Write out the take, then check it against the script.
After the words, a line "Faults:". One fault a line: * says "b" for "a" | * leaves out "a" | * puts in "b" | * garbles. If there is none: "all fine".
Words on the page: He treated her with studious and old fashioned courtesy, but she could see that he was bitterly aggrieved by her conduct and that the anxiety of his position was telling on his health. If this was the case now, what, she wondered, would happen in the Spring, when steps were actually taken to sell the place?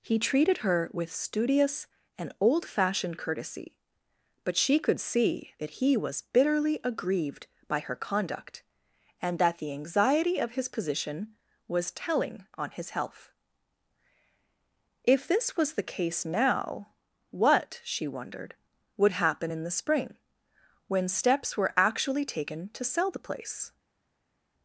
He treated her with studious and old fashioned courtesy, but she could see that he was bitterly aggrieved by her conduct and that the anxiety of his position was telling on his health. If this was the case now, what, she wondered, would happen in the Spring, when steps were actually taken to sell the place?
Faults:
all fine